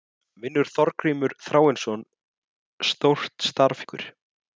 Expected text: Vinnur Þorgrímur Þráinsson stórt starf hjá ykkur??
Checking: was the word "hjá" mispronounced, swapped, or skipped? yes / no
yes